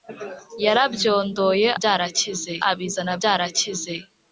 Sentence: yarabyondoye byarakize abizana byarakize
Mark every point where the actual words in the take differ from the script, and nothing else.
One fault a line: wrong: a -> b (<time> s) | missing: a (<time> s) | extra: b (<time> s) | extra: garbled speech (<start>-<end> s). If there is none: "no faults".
no faults